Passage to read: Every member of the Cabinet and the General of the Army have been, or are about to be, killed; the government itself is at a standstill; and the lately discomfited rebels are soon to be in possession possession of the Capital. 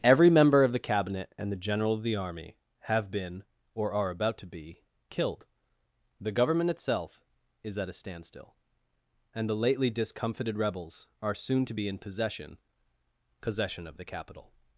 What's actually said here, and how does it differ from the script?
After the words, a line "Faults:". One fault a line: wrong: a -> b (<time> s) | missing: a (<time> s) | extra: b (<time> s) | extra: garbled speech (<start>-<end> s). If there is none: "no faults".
Every member of the Cabinet and the General of the Army have been, or are about to be, killed; the government itself is at a standstill; and the lately discomfited rebels are soon to be in possession possession of the Capital.
Faults:
no faults